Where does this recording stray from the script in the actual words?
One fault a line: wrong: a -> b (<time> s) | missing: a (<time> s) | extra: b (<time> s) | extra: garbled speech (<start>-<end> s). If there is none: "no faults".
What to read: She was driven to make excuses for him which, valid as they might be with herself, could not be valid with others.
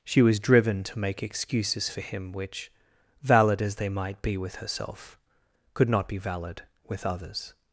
no faults